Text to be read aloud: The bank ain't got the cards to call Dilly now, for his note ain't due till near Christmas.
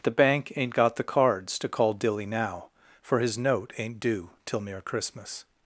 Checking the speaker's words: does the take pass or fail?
pass